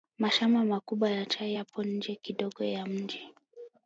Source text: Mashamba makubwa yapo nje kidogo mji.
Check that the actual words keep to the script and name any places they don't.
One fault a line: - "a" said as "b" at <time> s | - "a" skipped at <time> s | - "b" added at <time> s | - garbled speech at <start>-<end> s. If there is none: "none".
- "ya chai" added at 1.1 s
- "ya" added at 2.6 s